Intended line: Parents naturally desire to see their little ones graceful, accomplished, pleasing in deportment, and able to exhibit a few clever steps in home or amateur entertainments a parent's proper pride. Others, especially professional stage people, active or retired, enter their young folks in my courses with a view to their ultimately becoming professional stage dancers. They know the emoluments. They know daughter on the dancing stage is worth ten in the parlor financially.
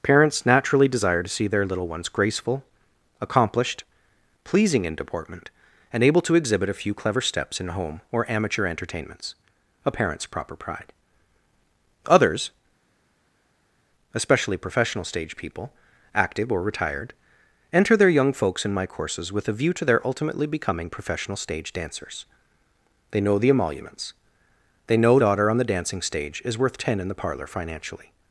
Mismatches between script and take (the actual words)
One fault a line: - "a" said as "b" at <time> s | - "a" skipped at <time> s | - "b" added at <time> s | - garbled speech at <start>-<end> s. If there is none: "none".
none